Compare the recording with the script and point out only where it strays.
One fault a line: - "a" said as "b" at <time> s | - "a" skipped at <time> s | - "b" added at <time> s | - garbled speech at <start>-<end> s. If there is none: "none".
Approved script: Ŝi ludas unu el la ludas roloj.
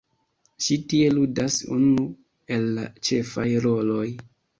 - "tie" added at 0.9 s
- "ludas" said as "ĉefaj" at 3.1 s